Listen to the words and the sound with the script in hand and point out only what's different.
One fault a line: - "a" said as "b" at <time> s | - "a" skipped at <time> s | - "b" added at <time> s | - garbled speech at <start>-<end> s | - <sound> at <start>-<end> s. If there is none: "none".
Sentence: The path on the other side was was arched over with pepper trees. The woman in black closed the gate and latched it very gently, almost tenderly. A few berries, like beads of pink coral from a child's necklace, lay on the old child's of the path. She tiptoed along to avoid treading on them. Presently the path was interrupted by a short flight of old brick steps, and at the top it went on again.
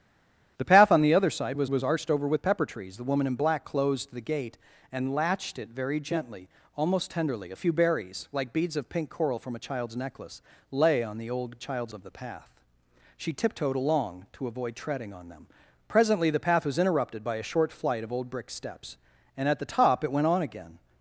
none